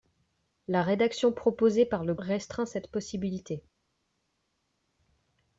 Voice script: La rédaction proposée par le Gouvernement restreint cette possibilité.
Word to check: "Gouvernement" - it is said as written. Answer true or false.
false